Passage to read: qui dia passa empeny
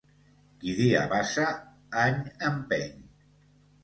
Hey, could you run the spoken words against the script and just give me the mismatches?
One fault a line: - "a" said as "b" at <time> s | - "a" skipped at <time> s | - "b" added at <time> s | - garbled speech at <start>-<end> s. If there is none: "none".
- "any" added at 2.0 s